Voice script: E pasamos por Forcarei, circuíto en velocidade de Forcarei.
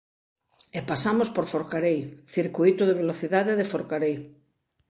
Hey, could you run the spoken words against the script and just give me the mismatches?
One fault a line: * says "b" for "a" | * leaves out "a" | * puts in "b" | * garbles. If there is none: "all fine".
* says "de" for "en"